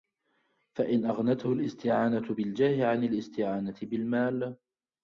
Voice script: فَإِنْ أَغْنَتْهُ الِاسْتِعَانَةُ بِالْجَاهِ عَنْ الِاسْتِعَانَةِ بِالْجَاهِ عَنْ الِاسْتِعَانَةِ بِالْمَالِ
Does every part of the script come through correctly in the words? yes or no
no